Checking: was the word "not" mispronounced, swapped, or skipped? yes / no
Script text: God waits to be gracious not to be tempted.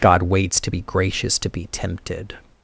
yes